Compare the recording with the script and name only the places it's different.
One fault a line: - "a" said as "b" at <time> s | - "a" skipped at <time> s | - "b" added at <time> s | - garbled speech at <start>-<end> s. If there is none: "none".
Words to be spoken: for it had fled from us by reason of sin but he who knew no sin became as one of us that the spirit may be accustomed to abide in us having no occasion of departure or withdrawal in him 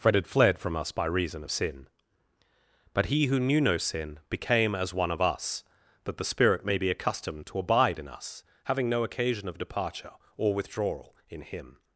none